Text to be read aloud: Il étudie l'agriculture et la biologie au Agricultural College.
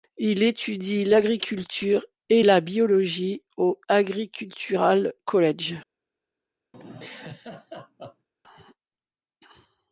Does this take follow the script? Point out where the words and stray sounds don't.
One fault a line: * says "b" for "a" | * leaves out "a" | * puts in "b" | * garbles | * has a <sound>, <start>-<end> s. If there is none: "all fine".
* has a laugh, 6.7-8.3 s